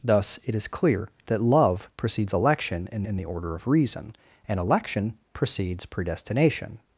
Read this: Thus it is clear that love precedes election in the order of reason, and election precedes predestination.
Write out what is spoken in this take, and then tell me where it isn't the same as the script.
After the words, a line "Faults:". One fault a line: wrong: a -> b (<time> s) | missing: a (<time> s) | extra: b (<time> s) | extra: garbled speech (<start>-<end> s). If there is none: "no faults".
Thus it is clear that love precedes election in in the order of reason, and election precedes predestination.
Faults:
extra: in (3.0 s)